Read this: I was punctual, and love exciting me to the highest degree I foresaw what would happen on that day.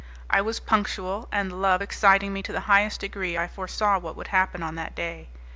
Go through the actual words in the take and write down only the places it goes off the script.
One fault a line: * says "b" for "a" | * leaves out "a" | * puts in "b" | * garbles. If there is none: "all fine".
all fine